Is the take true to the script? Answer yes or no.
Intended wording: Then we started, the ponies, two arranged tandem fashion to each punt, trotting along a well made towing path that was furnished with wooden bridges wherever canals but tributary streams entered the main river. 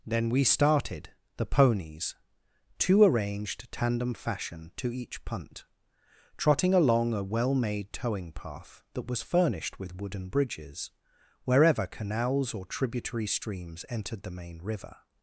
no